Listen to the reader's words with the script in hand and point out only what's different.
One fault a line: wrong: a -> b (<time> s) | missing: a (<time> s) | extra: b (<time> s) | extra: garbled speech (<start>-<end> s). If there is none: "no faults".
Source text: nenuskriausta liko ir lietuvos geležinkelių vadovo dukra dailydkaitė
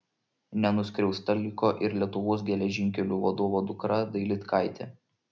no faults